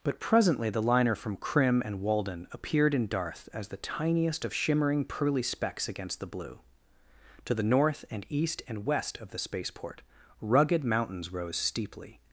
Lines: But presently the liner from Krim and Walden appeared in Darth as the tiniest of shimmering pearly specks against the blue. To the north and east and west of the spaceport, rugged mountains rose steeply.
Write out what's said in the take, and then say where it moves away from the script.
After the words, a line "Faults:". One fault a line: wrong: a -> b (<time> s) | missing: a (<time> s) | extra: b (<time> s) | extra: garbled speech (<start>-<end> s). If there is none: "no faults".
But presently the liner from Krim and Walden appeared in Darth as the tiniest of shimmering pearly specks against the blue. To the north and east and west of the spaceport, rugged mountains rose steeply.
Faults:
no faults